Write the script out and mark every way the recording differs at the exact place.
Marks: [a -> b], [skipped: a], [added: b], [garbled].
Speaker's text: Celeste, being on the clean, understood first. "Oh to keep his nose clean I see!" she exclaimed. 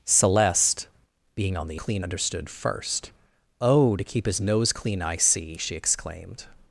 Celeste, being on the clean, understood first. "Oh to keep his nose clean I see!" she exclaimed.